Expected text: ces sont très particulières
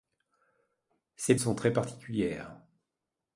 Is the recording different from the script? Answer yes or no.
no